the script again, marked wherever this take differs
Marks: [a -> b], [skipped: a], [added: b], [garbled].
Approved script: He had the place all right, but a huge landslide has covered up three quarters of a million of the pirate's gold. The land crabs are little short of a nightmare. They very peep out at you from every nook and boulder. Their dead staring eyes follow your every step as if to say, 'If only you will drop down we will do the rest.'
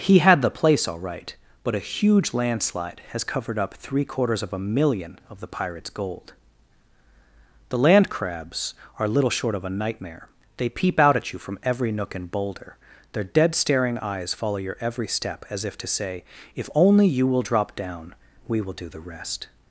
He had the place all right, but a huge landslide has covered up three quarters of a million of the pirate's gold. The land crabs are little short of a nightmare. They [skipped: very] peep out at you from every nook and boulder. Their dead staring eyes follow your every step as if to say, 'If only you will drop down we will do the rest.'